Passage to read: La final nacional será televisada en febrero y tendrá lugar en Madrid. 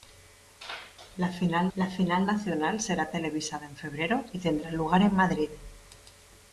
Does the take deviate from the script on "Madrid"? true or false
false